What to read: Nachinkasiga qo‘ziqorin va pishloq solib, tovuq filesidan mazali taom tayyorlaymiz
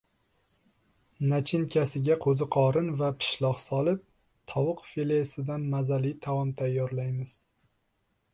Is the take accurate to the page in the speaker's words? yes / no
yes